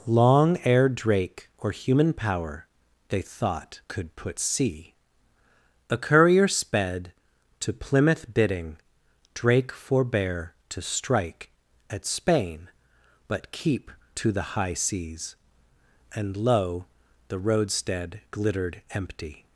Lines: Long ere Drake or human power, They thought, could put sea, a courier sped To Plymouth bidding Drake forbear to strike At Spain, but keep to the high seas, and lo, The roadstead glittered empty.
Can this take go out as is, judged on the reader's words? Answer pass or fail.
pass